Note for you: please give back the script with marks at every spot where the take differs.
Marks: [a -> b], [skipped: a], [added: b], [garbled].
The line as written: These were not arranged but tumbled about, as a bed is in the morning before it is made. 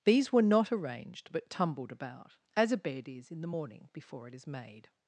These were not arranged but tumbled about, as a bed is in the morning before it is made.